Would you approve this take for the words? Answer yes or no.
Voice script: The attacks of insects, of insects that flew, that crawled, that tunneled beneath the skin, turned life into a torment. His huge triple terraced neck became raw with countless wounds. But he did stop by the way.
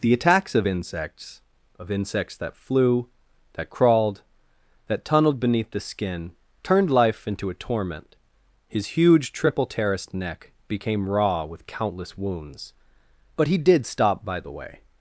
yes